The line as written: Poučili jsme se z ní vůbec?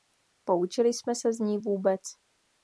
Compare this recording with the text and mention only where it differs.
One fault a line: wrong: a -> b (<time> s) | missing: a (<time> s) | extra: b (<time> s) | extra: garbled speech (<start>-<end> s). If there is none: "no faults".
no faults